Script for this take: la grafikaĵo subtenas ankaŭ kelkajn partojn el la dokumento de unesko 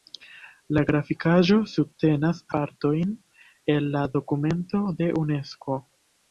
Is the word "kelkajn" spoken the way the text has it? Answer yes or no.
no